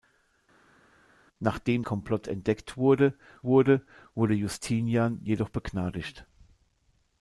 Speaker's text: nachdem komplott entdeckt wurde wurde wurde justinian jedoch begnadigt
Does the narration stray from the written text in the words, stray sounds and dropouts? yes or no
no